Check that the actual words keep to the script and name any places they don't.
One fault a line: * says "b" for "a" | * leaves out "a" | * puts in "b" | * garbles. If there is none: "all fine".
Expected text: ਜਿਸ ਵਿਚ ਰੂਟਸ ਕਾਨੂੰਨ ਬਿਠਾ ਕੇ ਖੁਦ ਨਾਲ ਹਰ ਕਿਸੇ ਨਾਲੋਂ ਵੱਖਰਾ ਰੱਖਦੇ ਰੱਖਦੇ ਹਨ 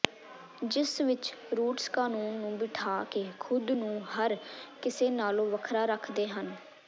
* puts in "ਨੂੰ"
* says "ਨੂੰ" for "ਨਾਲ"
* leaves out "ਰੱਖਦੇ"